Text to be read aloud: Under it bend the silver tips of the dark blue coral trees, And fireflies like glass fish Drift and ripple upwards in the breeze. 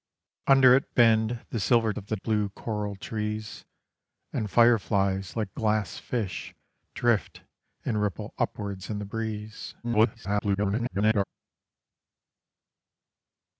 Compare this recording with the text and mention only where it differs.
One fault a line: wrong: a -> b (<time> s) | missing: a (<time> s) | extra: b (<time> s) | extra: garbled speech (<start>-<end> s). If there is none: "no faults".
missing: tips (1.9 s)
missing: dark (2.2 s)
extra: garbled speech (9.8-11.2 s)